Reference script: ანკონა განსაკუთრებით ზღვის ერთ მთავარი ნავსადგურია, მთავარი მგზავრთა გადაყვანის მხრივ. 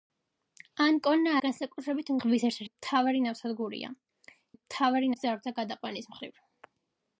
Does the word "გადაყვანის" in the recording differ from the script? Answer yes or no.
no